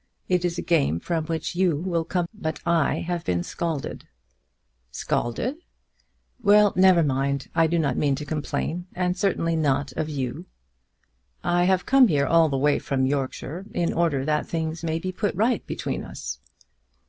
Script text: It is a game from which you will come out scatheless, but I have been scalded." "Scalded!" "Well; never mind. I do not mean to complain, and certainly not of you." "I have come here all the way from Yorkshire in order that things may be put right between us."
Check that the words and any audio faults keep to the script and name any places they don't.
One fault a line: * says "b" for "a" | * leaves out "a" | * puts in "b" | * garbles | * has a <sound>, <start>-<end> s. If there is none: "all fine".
* leaves out "out scatheless"